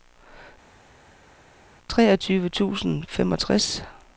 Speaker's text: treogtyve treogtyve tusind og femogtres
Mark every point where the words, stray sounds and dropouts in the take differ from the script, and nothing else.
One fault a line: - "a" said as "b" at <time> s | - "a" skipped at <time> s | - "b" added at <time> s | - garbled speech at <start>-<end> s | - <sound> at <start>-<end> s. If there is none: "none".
- "treogtyve" skipped at 2.5 s